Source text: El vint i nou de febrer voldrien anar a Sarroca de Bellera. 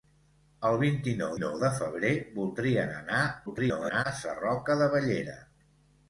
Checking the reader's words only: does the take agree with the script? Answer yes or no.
no